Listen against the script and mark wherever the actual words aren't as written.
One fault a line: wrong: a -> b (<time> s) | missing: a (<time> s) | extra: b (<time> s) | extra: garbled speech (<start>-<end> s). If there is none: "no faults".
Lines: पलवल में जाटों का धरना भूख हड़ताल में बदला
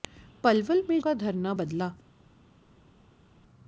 missing: जाटों (1.0 s)
missing: भूख हड़ताल में (1.5 s)